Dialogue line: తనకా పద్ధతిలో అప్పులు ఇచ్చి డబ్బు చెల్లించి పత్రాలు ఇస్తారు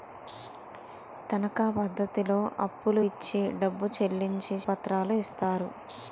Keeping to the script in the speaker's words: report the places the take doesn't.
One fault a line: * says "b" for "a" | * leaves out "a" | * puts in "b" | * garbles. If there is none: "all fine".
all fine